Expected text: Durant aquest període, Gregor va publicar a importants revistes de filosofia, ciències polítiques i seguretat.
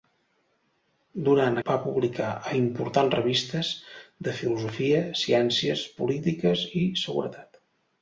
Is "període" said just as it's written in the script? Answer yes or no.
no